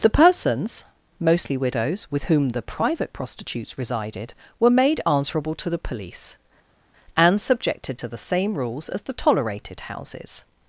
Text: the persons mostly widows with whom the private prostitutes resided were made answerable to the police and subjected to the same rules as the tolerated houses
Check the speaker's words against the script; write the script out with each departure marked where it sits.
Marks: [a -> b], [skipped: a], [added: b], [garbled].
the persons mostly widows with whom the private prostitutes resided were made answerable to the police and subjected to the same rules as the tolerated houses